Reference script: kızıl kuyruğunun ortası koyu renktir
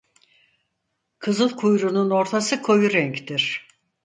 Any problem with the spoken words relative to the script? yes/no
no